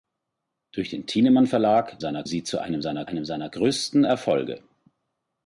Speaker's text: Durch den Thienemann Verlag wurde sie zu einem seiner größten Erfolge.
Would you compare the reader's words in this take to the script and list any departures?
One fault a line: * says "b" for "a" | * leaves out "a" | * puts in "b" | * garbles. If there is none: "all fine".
* says "seiner" for "wurde"
* puts in "einem seiner"